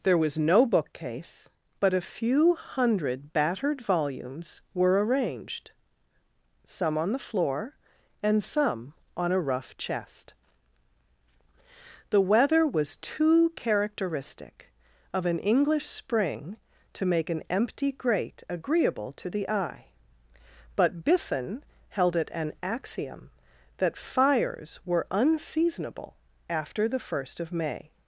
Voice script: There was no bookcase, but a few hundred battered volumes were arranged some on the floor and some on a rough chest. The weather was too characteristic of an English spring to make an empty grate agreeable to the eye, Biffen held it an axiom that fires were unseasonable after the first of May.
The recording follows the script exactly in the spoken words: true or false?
false